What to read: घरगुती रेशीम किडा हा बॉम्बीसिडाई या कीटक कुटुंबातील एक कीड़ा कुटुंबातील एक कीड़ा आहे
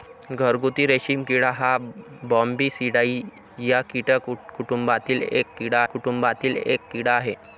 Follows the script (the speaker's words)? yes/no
yes